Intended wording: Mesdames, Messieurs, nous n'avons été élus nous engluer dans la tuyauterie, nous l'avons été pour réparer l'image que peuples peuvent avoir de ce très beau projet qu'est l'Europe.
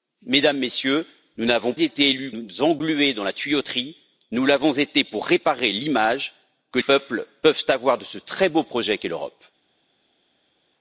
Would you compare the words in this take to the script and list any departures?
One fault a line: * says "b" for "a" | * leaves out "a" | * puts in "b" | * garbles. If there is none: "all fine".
all fine